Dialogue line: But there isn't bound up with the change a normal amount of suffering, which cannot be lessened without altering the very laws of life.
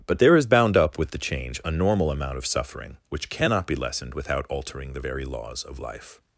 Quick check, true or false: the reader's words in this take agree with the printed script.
false